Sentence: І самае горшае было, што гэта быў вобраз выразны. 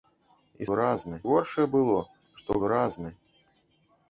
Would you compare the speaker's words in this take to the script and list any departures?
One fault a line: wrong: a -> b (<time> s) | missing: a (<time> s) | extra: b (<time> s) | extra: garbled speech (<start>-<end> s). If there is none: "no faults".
wrong: самае -> выразны (0.7 s)
missing: гэта быў вобраз (2.6 s)